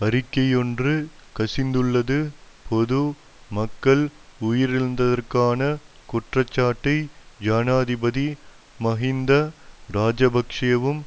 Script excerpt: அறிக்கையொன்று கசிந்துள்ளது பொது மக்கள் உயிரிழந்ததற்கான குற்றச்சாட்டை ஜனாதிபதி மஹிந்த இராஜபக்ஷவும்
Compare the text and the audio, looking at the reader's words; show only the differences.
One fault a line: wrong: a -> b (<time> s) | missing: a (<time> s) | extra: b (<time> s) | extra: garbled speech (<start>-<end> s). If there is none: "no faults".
no faults